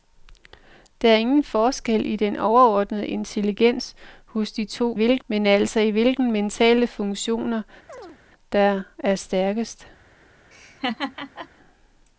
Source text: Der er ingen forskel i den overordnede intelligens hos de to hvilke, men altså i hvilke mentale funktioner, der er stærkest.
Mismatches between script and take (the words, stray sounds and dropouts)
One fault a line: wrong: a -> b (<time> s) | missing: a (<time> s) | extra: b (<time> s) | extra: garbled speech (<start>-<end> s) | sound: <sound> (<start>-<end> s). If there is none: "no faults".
sound: chirp (7.9-8.2 s)
sound: laugh (10.5-11.5 s)